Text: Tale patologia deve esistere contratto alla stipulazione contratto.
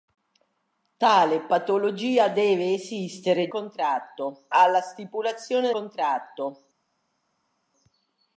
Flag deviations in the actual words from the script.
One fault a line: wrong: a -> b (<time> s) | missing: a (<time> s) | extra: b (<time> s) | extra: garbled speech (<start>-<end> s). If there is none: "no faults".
no faults